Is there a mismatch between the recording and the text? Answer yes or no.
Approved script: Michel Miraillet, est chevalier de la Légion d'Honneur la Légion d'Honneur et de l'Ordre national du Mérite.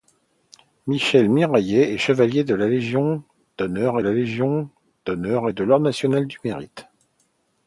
no